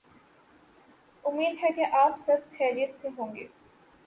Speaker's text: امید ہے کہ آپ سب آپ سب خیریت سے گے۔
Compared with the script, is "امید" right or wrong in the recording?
right